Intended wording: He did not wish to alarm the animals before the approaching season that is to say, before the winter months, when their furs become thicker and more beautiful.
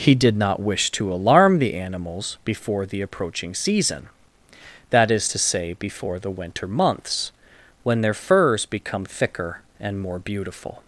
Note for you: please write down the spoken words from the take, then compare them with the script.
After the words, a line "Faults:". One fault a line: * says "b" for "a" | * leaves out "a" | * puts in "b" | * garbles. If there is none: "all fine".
He did not wish to alarm the animals before the approaching season that is to say, before the winter months, when their furs become thicker and more beautiful.
Faults:
all fine